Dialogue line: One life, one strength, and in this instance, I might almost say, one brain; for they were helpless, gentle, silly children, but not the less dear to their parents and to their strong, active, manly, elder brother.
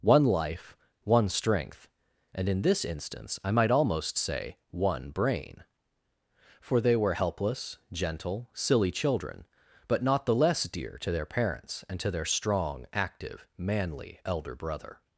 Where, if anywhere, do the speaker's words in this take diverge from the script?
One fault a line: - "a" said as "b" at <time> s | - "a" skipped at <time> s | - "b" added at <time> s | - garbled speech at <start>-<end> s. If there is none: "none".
none